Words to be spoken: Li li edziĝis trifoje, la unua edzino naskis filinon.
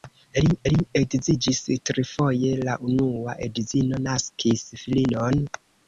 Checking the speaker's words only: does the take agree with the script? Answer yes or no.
yes